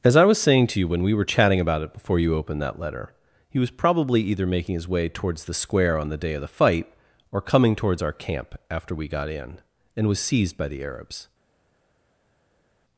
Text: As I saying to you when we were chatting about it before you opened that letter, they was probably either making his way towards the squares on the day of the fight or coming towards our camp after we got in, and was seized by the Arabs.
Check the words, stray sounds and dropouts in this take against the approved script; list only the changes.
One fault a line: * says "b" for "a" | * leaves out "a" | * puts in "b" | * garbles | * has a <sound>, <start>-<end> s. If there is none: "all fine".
* puts in "was"
* says "he" for "they"
* says "square" for "squares"